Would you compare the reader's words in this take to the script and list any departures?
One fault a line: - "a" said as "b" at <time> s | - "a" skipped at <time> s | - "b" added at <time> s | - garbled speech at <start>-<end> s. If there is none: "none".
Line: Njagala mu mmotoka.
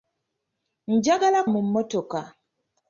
none